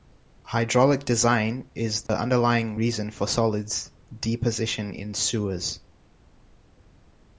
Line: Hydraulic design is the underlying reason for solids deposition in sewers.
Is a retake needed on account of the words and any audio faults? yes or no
yes